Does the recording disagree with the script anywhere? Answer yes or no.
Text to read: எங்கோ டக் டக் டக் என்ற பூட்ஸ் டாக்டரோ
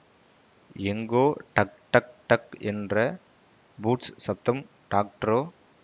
yes